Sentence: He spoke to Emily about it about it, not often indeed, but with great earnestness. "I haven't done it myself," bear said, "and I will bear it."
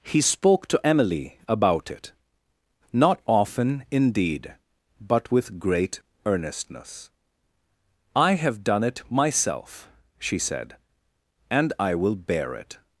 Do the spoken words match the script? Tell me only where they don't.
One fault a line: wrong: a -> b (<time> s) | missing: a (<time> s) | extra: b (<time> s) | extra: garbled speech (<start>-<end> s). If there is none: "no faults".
missing: about it (2.1 s)
wrong: haven't -> have (8.3 s)
wrong: bear -> she (10.2 s)